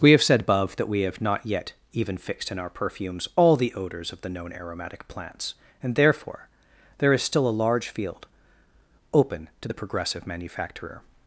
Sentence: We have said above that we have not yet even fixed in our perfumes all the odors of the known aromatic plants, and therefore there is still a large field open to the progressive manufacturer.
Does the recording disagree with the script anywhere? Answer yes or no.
no